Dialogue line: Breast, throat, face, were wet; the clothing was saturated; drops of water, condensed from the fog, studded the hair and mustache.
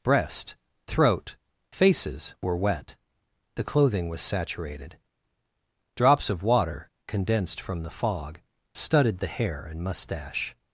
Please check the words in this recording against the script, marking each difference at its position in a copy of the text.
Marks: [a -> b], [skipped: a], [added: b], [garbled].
Breast, throat, [face, -> faces] were wet; the clothing was saturated; drops of water, condensed from the fog, studded the hair and mustache.